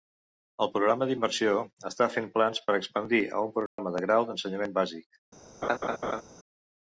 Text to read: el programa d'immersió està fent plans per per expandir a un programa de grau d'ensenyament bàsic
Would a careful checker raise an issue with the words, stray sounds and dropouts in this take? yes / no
yes